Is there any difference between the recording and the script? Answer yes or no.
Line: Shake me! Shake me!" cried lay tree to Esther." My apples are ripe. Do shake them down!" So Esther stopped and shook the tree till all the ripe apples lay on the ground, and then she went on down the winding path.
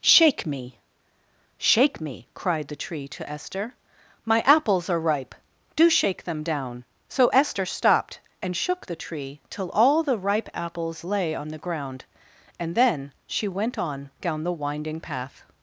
yes